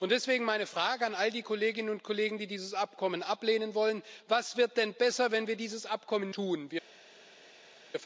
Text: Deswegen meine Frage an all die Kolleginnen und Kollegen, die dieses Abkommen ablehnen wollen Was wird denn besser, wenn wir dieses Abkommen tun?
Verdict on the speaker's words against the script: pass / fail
pass